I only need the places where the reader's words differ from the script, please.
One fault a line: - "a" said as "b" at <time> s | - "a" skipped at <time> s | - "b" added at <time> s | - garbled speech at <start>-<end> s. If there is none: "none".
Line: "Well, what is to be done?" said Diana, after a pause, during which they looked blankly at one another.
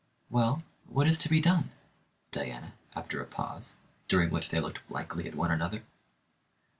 - "said" skipped at 1.7 s